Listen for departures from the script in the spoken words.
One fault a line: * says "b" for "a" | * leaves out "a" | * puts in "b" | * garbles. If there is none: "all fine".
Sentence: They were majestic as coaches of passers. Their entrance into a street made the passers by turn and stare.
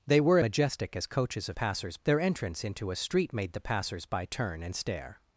all fine